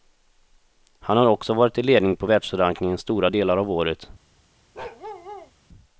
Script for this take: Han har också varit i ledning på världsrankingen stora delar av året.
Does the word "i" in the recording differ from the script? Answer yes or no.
no